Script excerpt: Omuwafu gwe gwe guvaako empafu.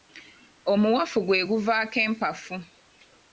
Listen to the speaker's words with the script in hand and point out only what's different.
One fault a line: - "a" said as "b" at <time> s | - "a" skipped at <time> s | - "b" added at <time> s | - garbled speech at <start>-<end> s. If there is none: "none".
- "gwe" skipped at 1.4 s